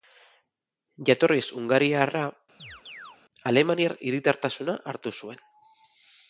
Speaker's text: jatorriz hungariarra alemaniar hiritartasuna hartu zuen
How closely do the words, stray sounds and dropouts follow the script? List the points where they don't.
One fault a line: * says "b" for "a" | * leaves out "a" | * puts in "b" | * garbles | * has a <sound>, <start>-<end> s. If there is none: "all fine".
* has a chirp, 2.6-3.2 s